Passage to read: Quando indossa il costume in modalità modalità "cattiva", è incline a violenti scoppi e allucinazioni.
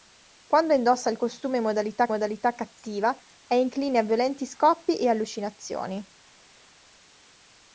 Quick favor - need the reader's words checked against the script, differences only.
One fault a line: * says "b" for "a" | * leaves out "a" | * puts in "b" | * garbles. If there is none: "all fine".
all fine